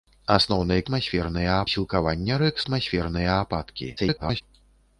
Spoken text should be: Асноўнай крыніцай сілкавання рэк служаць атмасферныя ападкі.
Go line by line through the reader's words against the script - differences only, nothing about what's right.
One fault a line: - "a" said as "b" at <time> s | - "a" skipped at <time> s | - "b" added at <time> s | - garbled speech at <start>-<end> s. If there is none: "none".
- "крыніцай" said as "атмасферныя" at 0.8 s
- "служаць" skipped at 2.6 s
- garbled speech at 4.0-4.4 s